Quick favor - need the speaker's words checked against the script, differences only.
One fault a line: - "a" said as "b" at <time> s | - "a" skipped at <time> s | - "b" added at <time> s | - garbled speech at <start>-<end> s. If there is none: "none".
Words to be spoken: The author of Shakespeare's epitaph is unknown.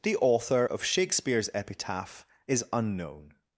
none